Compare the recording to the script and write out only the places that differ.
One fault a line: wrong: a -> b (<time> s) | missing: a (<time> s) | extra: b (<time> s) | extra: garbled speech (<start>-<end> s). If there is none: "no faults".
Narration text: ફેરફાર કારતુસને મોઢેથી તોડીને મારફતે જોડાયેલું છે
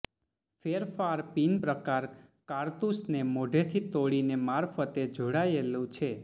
extra: પિન પ્રકાર (1.3 s)